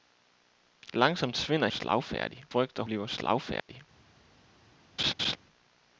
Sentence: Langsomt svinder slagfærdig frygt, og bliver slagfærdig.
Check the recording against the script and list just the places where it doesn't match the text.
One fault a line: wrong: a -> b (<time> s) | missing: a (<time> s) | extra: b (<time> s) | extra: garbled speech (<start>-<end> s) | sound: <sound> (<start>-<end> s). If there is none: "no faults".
sound: dropout (3.6-3.7 s)
sound: laugh (5.0-5.4 s)